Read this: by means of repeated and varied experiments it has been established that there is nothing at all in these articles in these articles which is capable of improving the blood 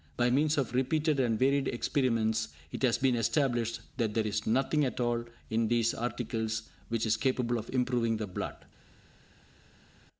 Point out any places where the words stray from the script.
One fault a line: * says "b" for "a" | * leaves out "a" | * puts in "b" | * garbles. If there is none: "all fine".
* leaves out "in these articles"